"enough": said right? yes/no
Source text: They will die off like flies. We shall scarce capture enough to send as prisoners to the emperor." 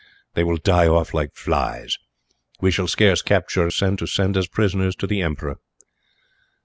no